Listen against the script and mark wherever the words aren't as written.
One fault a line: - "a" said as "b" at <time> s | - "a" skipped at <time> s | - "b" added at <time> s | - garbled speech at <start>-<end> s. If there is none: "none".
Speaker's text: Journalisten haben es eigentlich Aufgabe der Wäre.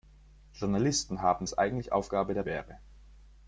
none